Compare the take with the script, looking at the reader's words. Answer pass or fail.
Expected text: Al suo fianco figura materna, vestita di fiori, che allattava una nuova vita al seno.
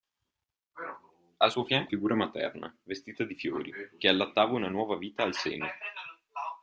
pass